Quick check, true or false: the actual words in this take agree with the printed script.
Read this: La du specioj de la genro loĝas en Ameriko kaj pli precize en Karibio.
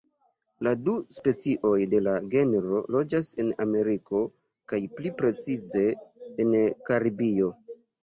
true